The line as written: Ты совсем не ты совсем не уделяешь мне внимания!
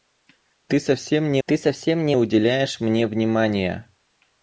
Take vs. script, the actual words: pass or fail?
pass